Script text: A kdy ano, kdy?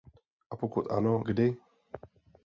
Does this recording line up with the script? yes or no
no